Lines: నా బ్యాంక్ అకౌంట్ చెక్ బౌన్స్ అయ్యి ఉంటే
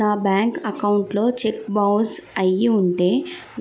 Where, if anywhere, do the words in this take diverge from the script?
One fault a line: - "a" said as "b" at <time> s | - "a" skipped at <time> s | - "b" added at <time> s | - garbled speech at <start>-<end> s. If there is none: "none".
- "లో" added at 1.1 s